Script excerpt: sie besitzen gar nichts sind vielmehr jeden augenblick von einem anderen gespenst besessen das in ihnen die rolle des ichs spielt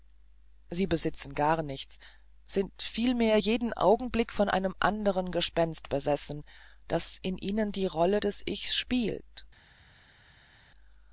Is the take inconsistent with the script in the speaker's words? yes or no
no